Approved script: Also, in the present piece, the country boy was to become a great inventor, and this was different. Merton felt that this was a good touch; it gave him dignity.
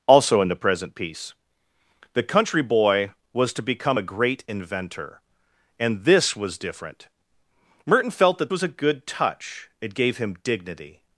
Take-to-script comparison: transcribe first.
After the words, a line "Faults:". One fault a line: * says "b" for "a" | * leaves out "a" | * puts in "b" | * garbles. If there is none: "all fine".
Also, in the present piece, the country boy was to become a great inventor, and this was different. Merton felt that was a good touch; it gave him dignity.
Faults:
* leaves out "this"